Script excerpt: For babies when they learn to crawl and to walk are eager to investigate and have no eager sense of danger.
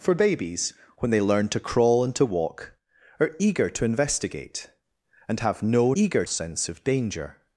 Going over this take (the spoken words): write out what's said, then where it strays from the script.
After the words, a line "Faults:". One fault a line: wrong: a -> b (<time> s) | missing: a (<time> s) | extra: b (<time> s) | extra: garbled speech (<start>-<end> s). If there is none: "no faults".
For babies when they learn to crawl and to walk are eager to investigate and have no eager sense of danger.
Faults:
no faults